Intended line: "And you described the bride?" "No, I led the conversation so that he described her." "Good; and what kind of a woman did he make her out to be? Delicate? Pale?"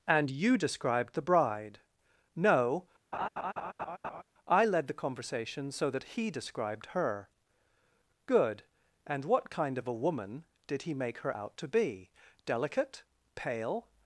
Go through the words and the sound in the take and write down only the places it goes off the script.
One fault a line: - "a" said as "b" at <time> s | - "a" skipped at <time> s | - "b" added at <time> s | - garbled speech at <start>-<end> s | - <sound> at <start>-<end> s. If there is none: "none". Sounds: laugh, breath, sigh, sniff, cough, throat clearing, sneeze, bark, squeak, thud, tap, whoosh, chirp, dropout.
- laugh at 3.1-4.2 s